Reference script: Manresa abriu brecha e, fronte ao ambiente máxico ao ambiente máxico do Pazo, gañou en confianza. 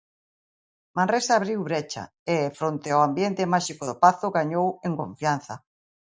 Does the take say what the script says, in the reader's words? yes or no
no